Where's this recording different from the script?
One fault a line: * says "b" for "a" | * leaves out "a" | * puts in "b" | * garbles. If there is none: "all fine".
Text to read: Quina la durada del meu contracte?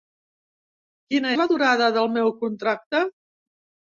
all fine